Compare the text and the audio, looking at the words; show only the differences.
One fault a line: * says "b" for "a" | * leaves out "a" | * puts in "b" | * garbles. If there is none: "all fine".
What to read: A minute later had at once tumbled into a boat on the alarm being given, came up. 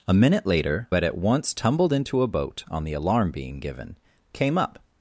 all fine